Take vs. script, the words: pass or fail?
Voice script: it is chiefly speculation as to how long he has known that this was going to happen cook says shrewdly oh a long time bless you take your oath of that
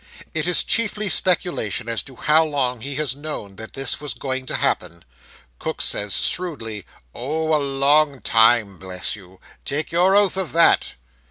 pass